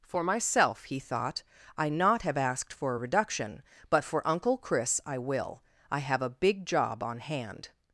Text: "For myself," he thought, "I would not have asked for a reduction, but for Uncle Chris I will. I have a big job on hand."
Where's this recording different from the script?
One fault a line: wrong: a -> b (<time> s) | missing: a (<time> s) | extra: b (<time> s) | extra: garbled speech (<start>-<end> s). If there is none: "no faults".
missing: would (1.9 s)